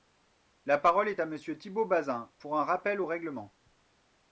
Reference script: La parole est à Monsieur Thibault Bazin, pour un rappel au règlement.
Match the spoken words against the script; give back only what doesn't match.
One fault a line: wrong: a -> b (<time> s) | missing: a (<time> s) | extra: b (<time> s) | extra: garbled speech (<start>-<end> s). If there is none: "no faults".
no faults